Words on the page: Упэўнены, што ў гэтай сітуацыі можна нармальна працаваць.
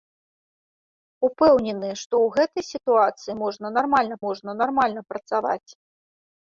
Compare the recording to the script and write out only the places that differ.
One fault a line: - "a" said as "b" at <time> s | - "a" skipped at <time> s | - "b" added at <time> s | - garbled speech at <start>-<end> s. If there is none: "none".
- "можна нармальна" added at 4.3 s